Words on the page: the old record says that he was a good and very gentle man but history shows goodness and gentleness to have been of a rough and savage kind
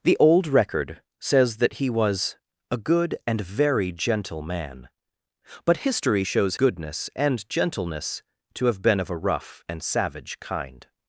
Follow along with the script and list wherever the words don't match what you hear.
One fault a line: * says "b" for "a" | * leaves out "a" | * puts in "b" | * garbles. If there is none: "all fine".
all fine